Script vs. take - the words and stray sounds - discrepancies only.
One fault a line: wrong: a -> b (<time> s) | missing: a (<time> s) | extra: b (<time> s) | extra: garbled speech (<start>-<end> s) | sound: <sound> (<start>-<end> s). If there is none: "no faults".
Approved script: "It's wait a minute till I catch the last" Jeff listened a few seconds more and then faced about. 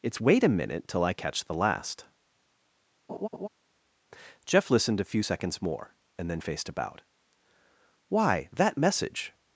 sound: laugh (3.1-3.5 s)
extra: Why that message (8.1 s)